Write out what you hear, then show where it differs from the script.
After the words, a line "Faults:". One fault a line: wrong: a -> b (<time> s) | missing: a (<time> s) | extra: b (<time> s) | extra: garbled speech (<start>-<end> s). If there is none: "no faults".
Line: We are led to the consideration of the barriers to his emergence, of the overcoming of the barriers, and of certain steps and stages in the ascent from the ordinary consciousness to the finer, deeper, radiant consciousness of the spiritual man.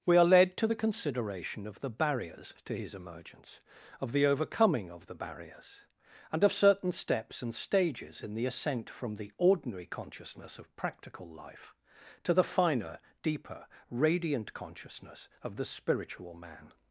We are led to the consideration of the barriers to his emergence, of the overcoming of the barriers, and of certain steps and stages in the ascent from the ordinary consciousness of practical life, to the finer, deeper, radiant consciousness of the spiritual man.
Faults:
extra: of practical life (10.6 s)